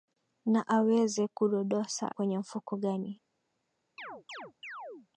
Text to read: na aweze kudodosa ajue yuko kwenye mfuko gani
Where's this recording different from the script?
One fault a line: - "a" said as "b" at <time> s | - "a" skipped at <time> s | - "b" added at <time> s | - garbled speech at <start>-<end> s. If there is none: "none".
- "ajue yuko" skipped at 2.0 s